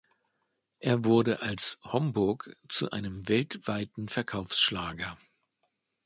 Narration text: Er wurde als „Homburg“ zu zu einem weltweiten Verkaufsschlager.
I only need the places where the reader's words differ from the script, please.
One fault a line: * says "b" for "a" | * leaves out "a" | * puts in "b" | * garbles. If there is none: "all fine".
* leaves out "zu"